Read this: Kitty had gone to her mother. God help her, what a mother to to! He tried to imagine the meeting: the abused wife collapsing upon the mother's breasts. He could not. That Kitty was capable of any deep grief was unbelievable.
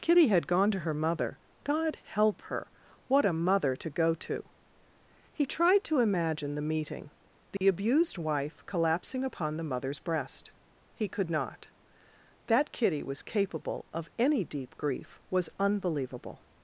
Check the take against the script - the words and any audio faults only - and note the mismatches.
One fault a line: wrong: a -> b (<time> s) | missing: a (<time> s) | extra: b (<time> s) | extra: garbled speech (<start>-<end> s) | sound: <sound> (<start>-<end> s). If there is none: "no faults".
extra: go (3.9 s)
sound: dropout (7.6-7.6 s)
wrong: breasts -> breast (10.0 s)